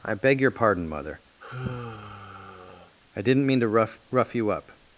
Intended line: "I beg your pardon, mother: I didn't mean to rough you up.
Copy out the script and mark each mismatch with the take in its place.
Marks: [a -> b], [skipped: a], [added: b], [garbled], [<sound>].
"I beg your pardon, mother: [sigh] I didn't mean to rough [added: rough] you up.